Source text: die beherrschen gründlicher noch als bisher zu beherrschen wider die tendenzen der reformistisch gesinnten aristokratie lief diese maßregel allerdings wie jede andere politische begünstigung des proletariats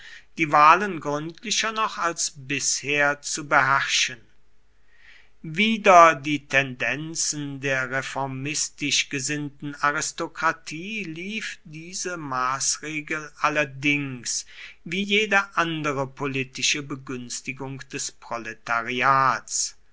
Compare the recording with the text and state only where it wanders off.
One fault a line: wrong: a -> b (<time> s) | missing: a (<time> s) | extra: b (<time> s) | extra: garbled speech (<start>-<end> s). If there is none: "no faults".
wrong: beherrschen -> wahlen (0.5 s)